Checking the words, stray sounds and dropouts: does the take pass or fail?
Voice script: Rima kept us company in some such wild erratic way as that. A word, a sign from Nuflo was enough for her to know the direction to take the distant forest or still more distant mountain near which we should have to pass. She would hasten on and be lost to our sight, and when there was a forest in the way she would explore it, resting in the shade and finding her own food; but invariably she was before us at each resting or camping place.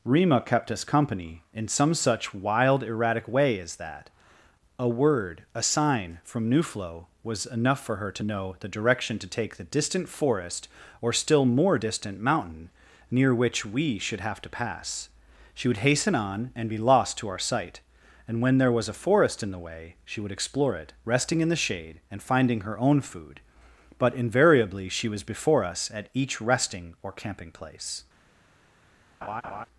fail